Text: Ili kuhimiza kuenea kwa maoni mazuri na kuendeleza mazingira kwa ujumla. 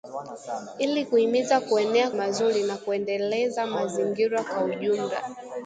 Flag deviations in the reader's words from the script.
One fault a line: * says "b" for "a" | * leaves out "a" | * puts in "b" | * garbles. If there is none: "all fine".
* leaves out "kwa maoni"